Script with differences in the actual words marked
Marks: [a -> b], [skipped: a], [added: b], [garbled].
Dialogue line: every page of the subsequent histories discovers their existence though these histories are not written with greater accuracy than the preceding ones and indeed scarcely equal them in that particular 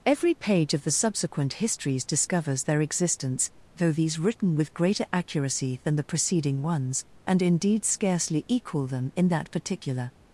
every page of the subsequent histories discovers their existence though these [skipped: histories are not] written with greater accuracy than the preceding ones and indeed scarcely equal them in that particular